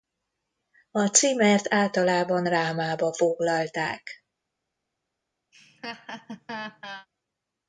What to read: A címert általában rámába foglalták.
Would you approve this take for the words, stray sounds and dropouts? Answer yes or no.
no